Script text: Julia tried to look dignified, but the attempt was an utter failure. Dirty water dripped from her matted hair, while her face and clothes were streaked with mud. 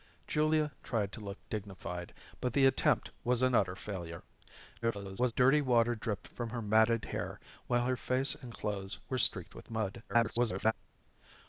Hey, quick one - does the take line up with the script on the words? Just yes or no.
no